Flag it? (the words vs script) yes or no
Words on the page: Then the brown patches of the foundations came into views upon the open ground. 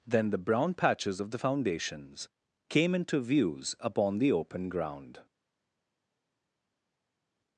no